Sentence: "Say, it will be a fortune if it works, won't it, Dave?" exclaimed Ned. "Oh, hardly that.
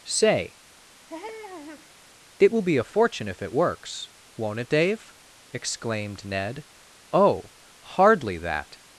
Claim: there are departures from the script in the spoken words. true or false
false